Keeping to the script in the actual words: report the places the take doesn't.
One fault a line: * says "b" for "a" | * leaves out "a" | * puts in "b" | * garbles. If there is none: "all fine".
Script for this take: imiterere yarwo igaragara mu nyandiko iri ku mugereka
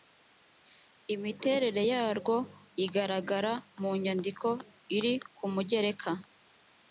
all fine